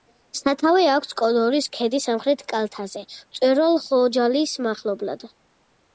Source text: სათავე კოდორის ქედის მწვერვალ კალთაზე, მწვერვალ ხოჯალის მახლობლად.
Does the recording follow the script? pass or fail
fail